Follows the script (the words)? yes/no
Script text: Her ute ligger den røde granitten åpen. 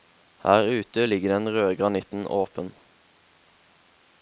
yes